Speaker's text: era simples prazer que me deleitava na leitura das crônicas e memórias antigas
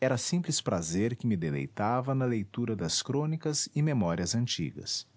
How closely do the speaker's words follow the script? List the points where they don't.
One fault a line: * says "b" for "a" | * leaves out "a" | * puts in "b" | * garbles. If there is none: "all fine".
all fine